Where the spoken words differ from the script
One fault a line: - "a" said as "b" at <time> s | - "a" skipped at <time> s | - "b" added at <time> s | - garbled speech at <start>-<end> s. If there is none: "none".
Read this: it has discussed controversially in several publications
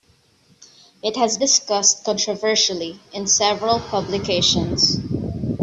none